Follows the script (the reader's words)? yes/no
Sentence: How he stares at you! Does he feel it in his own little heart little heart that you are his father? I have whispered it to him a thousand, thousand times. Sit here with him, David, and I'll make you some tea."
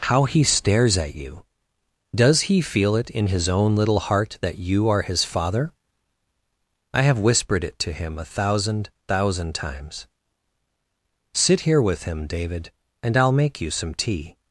no